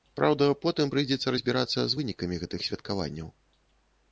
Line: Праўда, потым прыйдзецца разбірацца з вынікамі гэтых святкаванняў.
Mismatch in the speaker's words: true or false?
false